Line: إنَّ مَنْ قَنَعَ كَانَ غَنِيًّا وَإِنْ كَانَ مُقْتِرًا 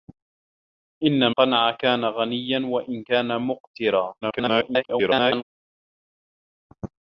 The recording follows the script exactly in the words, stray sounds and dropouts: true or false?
false